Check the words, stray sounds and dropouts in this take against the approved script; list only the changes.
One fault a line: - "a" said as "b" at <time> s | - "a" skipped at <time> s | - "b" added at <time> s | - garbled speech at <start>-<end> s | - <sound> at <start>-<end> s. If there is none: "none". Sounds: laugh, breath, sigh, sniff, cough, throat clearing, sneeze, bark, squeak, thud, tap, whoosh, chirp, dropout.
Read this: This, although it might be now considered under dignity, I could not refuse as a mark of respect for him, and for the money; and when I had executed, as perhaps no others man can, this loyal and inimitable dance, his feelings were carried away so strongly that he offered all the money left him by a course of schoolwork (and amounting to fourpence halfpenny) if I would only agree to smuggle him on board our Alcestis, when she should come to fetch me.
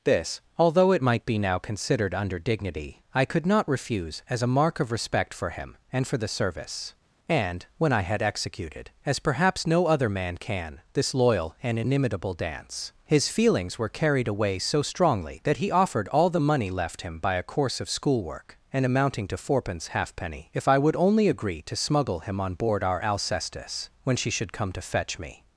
- "money" said as "service" at 6.3 s
- "others" said as "other" at 9.9 s